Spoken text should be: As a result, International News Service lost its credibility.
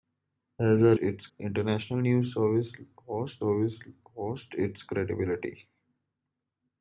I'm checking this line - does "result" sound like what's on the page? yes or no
no